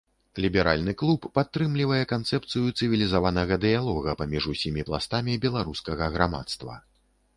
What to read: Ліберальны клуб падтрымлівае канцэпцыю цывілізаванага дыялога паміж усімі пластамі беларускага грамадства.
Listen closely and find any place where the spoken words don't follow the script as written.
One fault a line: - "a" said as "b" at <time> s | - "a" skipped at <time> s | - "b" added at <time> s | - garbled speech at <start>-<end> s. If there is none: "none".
none